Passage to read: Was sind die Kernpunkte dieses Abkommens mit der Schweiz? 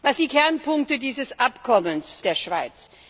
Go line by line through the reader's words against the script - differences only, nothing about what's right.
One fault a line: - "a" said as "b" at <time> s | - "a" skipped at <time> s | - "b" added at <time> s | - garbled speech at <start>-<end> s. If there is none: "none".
- "sind" skipped at 0.2 s
- "mit" skipped at 2.2 s